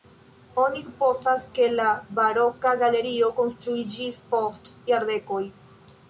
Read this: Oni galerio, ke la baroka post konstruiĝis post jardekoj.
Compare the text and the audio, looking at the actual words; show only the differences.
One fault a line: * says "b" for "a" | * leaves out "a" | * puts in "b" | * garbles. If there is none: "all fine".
* says "supozas" for "galerio"
* says "galerio" for "post"